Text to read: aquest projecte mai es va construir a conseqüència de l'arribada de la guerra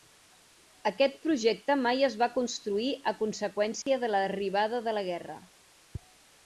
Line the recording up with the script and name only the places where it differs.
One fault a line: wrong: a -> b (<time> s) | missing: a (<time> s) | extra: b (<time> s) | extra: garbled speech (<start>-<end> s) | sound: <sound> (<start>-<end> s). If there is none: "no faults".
sound: dropout (3.8-3.9 s)